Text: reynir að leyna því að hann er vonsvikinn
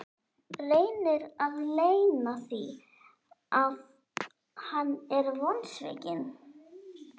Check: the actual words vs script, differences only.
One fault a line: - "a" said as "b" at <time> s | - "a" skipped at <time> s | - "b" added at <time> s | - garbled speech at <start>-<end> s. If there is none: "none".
none